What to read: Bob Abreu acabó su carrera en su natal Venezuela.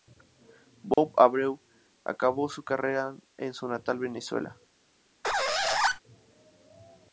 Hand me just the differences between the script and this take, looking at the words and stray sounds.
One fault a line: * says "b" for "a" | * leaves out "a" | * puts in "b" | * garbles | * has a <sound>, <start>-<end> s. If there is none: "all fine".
* has a dropout, 0.9-1.0 s
* has a squeak, 5.2-6.0 s